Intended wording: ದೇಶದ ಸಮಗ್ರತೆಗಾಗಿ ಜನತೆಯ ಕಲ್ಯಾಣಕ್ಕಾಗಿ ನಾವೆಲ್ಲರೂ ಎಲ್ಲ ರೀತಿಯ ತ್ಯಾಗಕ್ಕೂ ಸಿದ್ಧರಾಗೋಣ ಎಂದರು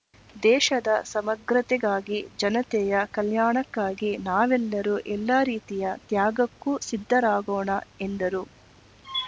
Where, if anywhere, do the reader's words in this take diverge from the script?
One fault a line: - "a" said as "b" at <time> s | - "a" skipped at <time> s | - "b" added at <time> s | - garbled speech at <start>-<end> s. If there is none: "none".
none